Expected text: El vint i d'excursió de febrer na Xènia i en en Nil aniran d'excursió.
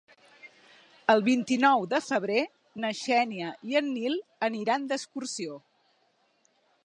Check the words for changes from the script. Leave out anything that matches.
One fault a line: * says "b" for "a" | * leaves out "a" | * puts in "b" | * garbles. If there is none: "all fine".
* says "nou" for "d'excursió"
* leaves out "en"